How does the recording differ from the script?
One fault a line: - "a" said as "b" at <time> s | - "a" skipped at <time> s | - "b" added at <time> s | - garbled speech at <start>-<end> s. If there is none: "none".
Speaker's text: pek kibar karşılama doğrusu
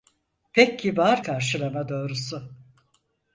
none